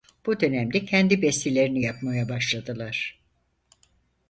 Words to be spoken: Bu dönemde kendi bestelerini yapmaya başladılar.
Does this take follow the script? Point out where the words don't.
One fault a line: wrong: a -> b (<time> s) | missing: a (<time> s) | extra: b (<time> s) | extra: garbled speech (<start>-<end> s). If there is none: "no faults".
no faults